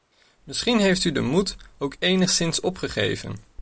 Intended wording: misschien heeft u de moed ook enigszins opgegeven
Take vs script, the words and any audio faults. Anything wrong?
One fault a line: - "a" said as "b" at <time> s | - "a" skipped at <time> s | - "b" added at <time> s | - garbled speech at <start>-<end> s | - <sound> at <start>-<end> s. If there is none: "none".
none